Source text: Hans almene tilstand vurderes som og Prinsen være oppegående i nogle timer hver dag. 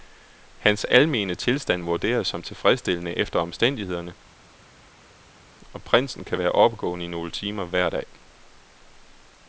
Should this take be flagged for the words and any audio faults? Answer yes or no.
yes